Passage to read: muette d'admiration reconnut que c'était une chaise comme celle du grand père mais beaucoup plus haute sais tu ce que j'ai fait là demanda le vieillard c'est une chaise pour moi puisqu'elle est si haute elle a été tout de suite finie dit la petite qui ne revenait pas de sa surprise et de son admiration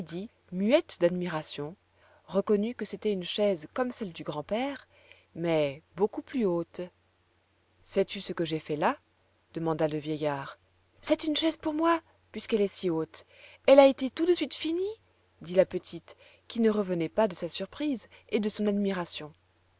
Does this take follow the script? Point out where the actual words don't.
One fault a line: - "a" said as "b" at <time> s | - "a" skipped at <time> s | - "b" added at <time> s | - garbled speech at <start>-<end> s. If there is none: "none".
none